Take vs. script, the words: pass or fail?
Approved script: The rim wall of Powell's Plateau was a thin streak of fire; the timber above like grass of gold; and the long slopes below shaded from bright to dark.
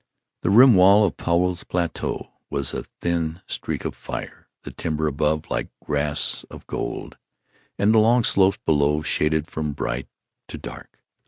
pass